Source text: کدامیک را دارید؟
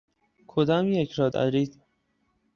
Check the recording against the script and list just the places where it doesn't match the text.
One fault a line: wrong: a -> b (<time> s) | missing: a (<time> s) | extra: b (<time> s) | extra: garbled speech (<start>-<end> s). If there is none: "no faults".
no faults